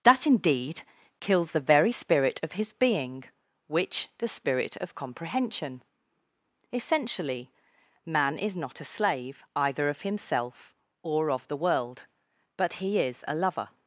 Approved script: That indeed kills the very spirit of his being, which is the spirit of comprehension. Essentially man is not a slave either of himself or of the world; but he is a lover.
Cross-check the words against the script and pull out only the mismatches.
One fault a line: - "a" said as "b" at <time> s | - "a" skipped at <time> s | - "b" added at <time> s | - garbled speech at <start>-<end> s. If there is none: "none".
- "is" skipped at 4.1 s